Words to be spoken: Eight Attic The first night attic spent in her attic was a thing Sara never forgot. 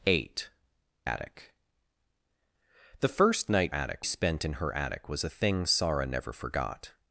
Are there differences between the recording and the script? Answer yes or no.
no